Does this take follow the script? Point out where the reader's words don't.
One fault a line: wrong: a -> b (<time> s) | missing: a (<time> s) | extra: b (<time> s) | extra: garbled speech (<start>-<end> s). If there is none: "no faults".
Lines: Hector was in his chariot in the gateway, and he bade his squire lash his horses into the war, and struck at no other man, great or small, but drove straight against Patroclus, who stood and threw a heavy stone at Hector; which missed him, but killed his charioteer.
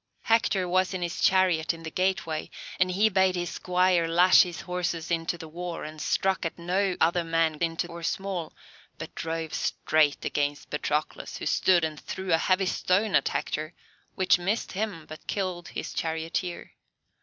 wrong: great -> into (7.6 s)